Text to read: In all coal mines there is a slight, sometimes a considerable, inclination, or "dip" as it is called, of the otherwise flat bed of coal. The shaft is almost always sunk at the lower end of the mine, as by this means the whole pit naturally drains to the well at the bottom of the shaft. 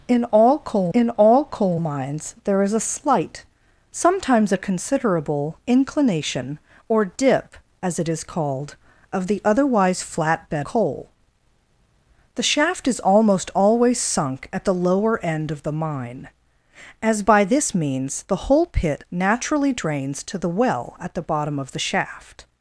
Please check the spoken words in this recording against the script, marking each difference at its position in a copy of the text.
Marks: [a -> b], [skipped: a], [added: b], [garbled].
In all coal [added: in all coal] mines there is a slight, sometimes a considerable, inclination, or "dip" as it is called, of the otherwise flat bed [skipped: of] coal. The shaft is almost always sunk at the lower end of the mine, as by this means the whole pit naturally drains to the well at the bottom of the shaft.